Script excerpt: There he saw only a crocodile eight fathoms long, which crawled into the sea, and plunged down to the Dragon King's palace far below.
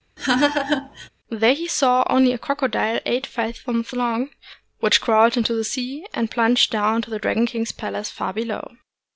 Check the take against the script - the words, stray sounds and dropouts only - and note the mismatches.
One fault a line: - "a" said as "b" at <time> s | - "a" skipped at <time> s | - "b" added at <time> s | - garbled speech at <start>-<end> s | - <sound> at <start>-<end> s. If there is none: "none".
- laugh at 0.2-1.1 s